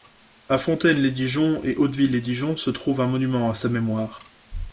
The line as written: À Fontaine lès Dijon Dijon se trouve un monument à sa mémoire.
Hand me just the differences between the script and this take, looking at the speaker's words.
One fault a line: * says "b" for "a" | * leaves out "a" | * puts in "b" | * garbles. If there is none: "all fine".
* puts in "et Hauteville lès"